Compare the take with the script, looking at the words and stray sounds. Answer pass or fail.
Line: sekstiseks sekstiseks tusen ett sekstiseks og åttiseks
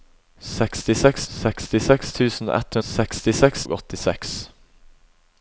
pass